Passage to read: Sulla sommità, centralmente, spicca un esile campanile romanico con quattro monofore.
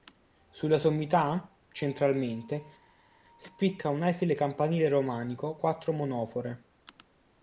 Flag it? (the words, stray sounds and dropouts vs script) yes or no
yes